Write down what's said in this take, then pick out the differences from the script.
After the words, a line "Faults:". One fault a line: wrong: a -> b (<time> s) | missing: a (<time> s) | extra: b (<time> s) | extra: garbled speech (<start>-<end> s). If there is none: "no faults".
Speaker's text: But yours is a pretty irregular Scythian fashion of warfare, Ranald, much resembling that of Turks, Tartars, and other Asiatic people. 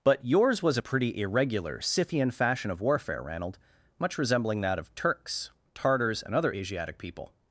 But yours was a pretty irregular Scythian fashion of warfare, Ranald, much resembling that of Turks, Tartars, and other Asiatic people.
Faults:
wrong: is -> was (0.6 s)